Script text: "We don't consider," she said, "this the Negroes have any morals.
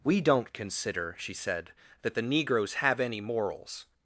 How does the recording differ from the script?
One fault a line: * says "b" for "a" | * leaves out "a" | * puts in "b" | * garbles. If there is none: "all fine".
* says "that" for "this"